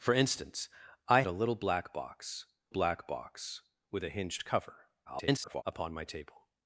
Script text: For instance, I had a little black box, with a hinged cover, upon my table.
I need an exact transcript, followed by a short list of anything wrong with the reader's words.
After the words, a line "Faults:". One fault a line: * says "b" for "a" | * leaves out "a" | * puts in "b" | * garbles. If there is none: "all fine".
For instance, I a little black box black box, with a hinged cover, [garbled] upon my table.
Faults:
* leaves out "had"
* puts in "black box"
* garbles